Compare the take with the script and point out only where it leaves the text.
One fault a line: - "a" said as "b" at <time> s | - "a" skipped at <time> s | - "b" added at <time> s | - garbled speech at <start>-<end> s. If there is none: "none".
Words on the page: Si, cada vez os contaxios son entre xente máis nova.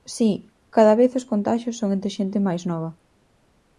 none